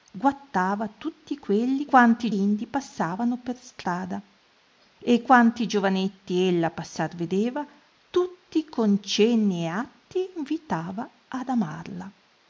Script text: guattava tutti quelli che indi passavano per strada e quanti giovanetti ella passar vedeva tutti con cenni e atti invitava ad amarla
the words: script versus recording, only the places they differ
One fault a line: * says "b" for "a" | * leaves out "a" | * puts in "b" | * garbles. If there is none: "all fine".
* says "quanti" for "che"